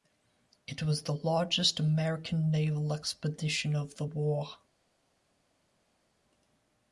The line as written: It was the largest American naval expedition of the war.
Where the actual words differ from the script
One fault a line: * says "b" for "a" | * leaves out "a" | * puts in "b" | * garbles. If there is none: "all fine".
all fine